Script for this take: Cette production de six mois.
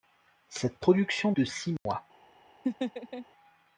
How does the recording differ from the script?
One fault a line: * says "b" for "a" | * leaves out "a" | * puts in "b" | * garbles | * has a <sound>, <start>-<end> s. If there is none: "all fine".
* has a dropout, 1.8-1.9 s
* has a laugh, 2.6-3.3 s